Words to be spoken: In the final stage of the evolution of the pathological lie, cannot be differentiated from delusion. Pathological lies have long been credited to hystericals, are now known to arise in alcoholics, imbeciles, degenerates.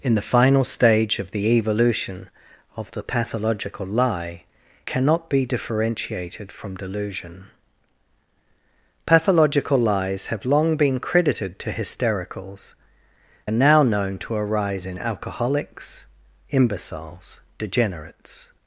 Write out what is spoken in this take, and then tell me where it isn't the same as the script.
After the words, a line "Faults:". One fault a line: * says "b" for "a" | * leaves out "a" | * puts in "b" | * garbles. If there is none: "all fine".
In the final stage of the evolution of the pathological lie, cannot be differentiated from delusion. Pathological lies have long been credited to hystericals, are now known to arise in alcoholics, imbeciles, degenerates.
Faults:
all fine